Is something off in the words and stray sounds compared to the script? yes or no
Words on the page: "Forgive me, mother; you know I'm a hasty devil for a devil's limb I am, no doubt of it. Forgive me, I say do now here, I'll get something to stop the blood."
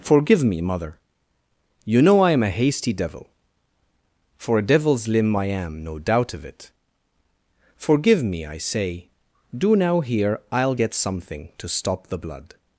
no